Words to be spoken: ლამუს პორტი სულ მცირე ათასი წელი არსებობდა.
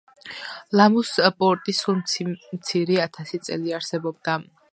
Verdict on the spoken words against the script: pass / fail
pass